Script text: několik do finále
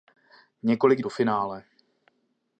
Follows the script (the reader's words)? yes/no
yes